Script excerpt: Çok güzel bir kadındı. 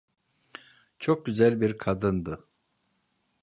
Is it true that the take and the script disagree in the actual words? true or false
false